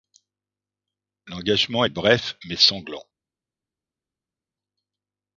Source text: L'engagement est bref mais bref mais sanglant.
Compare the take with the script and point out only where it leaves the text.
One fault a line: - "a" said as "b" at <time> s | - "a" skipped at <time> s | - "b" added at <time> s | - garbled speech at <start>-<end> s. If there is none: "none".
- "bref mais" skipped at 2.6 s